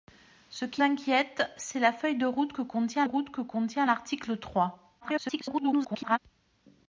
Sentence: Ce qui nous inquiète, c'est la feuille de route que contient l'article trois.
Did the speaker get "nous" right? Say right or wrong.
wrong